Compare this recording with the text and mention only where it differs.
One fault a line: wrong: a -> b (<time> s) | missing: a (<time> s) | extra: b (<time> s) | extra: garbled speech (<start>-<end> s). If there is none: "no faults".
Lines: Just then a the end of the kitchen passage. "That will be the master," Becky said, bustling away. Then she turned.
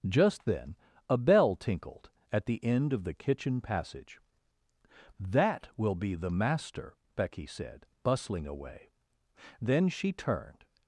extra: bell tinkled at (1.2 s)